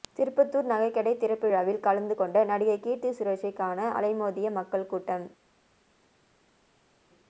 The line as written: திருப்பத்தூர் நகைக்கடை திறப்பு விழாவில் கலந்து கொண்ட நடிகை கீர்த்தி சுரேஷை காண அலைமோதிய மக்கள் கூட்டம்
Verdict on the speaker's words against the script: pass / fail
pass